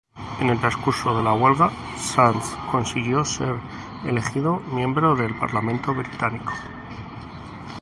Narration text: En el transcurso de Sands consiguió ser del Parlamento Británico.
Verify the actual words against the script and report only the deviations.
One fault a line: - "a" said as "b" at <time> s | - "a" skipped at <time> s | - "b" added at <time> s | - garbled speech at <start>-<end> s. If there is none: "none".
- "la huelga" added at 1.2 s
- "elegido miembro" added at 4.1 s